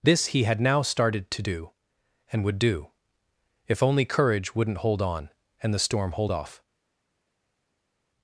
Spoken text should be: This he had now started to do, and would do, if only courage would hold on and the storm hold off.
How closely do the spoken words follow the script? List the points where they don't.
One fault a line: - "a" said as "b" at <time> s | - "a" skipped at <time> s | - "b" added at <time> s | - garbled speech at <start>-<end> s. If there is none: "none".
- "would" said as "wouldn't" at 4.5 s